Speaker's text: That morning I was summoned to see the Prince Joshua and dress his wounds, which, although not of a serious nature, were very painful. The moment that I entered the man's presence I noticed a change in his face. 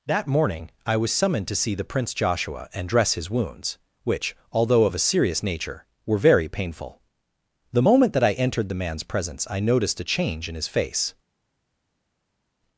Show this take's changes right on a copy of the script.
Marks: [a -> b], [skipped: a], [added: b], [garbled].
That morning I was summoned to see the Prince Joshua and dress his wounds, which, although [skipped: not] of a serious nature, were very painful. The moment that I entered the man's presence I noticed a change in his face.